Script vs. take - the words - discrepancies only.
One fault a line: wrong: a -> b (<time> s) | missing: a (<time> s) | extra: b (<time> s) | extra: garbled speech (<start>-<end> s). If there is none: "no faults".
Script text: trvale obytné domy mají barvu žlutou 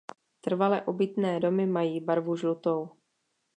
no faults